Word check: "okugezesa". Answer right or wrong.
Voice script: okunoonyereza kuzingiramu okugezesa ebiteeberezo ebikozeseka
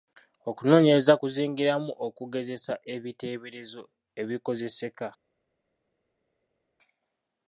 right